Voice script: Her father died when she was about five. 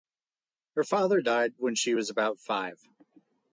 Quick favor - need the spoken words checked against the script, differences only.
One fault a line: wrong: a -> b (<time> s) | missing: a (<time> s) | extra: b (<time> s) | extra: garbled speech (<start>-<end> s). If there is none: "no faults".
no faults